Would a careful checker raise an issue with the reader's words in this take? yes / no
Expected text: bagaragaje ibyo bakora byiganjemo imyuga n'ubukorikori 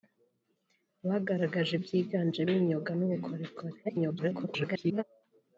yes